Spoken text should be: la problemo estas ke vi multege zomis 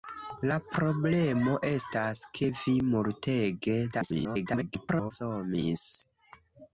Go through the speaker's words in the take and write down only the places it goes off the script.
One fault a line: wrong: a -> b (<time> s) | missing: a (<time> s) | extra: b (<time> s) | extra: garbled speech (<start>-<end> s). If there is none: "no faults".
extra: garbled speech (3.9-5.1 s)